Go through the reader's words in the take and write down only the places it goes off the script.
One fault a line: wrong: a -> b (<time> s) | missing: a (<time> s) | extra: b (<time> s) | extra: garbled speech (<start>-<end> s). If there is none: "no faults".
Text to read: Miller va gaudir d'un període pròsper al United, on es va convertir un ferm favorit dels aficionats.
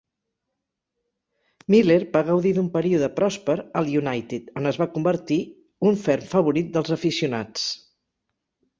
no faults